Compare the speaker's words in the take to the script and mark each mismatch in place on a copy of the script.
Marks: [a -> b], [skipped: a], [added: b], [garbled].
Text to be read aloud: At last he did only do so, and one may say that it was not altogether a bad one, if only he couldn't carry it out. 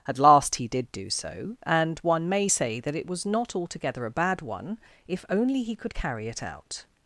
At last he did [skipped: only] do so, and one may say that it was not altogether a bad one, if only he [couldn't -> could] carry it out.